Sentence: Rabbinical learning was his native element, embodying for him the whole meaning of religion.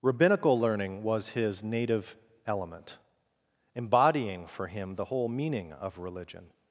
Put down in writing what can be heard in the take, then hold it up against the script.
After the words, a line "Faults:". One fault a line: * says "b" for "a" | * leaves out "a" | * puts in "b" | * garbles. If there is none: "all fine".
Rabbinical learning was his native element, embodying for him the whole meaning of religion.
Faults:
all fine